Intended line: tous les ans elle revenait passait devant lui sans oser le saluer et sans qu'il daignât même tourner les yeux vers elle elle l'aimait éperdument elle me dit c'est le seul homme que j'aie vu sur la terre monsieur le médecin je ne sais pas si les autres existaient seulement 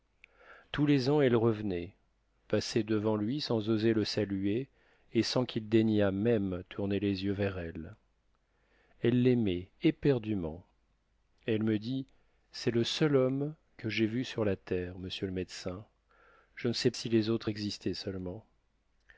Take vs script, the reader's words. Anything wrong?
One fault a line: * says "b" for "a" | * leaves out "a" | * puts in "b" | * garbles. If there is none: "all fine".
* leaves out "pas"